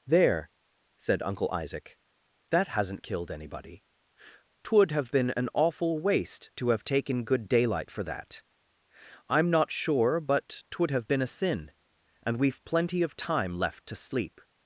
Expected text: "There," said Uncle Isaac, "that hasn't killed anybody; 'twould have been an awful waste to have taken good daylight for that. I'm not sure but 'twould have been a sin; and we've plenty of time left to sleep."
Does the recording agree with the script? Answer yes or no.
yes